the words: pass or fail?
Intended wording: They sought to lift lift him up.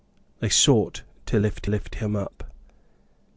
pass